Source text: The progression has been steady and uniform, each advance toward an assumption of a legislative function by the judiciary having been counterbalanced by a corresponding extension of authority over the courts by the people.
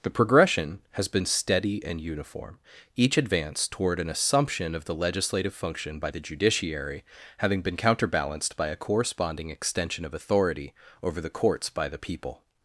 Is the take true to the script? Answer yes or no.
no